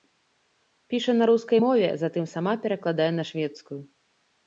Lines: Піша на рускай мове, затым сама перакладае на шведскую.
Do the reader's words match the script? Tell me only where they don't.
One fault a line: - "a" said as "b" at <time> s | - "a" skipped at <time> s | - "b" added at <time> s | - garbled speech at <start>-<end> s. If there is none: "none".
none